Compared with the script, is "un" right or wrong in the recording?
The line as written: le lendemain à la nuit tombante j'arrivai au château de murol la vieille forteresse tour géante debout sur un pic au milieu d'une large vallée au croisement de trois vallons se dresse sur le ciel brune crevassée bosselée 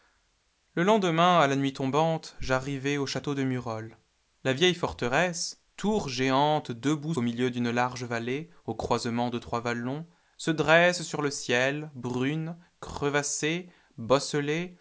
wrong